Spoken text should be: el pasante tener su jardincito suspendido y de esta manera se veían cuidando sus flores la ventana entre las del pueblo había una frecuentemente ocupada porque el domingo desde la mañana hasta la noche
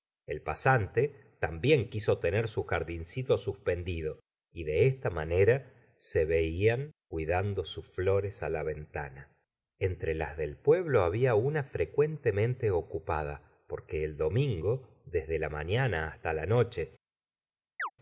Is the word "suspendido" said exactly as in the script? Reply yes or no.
yes